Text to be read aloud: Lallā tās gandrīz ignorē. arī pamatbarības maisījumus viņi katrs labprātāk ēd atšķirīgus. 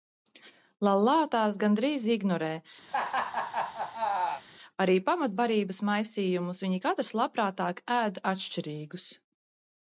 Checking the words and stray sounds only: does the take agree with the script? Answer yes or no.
no